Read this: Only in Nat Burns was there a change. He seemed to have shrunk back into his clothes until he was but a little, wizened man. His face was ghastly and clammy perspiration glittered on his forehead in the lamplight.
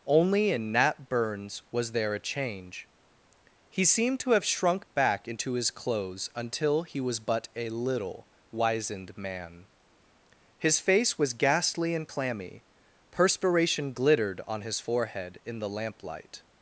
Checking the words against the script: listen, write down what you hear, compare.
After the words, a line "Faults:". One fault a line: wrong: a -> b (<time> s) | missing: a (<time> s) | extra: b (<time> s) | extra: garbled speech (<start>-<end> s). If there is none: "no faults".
Only in Nat Burns was there a change. He seemed to have shrunk back into his clothes until he was but a little, wizened man. His face was ghastly and clammy perspiration glittered on his forehead in the lamplight.
Faults:
no faults